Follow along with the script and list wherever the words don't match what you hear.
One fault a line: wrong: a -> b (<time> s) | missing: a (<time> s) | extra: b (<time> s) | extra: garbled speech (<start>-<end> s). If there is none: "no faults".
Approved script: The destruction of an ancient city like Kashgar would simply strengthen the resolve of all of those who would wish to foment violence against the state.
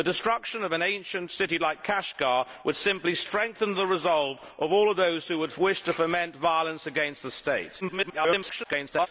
extra: garbled speech (7.8-9.1 s)